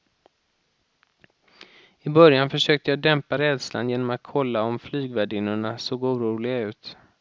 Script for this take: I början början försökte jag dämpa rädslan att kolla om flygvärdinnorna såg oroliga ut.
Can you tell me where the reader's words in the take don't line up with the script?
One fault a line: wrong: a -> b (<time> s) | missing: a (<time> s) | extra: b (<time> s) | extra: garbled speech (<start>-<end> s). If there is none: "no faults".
missing: början (2.5 s)
extra: genom (3.9 s)